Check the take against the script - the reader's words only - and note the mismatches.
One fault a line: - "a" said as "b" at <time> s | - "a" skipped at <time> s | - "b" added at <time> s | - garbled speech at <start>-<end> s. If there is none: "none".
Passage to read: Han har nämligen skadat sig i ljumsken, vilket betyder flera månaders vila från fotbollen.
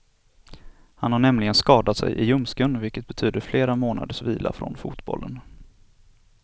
none